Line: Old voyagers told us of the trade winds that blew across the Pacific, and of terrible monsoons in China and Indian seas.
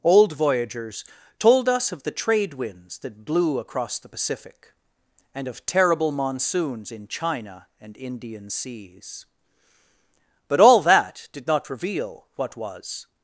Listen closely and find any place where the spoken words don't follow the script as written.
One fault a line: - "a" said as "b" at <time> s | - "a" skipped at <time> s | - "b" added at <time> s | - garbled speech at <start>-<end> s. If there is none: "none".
- "But all that did not reveal what was" added at 10.5 s